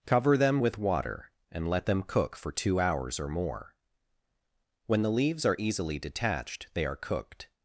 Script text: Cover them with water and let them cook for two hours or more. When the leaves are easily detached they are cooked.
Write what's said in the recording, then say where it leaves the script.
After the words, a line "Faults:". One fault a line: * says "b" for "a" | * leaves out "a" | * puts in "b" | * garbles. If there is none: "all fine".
Cover them with water and let them cook for two hours or more. When the leaves are easily detached they are cooked.
Faults:
all fine